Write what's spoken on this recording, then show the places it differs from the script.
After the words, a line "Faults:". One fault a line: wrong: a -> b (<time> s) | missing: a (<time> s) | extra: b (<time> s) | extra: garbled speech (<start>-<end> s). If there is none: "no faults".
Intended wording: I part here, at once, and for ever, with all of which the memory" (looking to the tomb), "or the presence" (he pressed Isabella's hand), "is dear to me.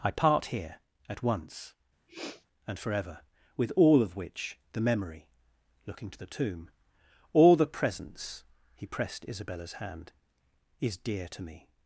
I part here, at once, and for ever, with all of which the memory" (looking to the tomb), "all the presence" (he pressed Isabella's hand), "is dear to me.
Faults:
wrong: or -> all (7.3 s)